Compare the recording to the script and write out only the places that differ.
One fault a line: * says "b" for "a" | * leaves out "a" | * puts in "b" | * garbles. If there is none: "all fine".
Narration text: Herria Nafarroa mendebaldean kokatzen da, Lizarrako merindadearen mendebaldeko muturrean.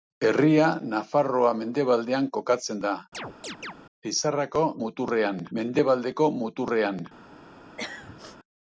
* says "muturrean" for "merindadearen"